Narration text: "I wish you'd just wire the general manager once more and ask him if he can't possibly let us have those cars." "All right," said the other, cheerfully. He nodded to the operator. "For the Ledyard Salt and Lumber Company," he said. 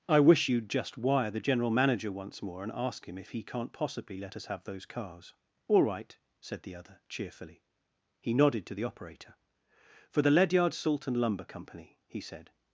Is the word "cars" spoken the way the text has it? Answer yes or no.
yes